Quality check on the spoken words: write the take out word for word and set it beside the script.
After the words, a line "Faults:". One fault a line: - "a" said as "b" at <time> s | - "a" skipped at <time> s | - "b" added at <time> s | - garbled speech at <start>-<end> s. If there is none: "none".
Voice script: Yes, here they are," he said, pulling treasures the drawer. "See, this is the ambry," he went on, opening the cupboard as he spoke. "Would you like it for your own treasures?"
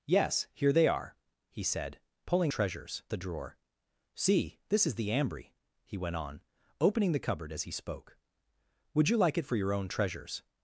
Yes, here they are," he said, pulling treasures the drawer. "See, this is the ambry," he went on, opening the cupboard as he spoke. "Would you like it for your own treasures?"
Faults:
none